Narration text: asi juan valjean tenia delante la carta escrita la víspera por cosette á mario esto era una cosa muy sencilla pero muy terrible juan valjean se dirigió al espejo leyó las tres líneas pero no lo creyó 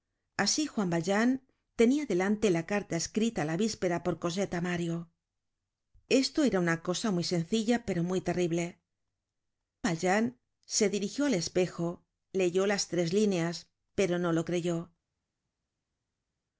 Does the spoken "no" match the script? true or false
true